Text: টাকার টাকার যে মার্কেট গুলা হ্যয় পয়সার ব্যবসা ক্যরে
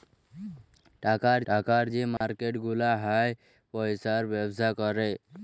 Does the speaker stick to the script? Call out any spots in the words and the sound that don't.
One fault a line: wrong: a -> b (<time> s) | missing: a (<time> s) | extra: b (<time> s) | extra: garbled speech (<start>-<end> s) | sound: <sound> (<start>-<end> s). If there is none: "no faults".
sound: dropout (2.2-2.2 s)